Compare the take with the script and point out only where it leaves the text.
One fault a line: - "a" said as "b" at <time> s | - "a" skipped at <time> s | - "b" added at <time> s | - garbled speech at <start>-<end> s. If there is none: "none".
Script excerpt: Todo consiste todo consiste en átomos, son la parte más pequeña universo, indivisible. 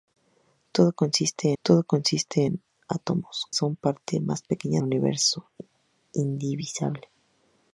none